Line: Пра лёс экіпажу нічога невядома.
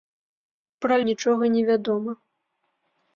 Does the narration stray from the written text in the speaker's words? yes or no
yes